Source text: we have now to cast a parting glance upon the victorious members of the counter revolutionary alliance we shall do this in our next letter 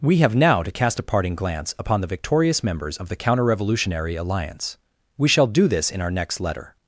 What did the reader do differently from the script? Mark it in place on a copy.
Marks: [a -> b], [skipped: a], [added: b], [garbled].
we have now to cast a parting glance upon the victorious members of the counter revolutionary alliance we shall do this in our next letter